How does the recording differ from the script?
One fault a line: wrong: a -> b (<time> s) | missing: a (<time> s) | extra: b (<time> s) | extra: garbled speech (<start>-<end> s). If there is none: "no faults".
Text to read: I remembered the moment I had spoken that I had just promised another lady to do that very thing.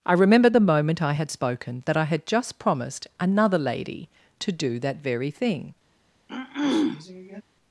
no faults